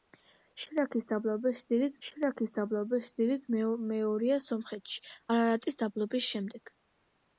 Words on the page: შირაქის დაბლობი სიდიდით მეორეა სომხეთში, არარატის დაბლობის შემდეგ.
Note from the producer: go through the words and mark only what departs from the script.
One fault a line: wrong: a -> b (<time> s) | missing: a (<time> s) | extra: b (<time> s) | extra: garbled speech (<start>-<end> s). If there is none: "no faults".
extra: შირაქის დაბლობი სიდიდით (2.1 s)